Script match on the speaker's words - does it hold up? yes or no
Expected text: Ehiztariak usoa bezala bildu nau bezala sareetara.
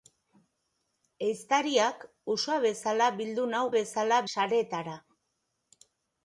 yes